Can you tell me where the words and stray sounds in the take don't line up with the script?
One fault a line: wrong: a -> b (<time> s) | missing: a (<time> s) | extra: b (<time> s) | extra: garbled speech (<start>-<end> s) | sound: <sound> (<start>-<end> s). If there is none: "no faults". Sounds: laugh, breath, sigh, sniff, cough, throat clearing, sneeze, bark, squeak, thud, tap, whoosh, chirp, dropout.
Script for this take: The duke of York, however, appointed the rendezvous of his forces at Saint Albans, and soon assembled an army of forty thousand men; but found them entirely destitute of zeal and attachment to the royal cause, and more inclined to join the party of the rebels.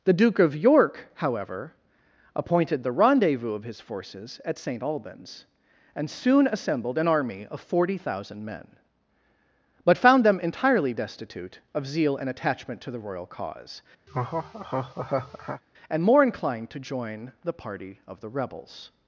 sound: laugh (14.1-15.6 s)